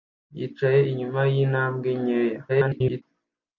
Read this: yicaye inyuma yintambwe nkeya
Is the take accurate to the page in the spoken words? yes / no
no